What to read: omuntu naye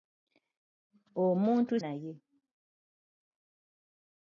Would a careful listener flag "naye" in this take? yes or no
no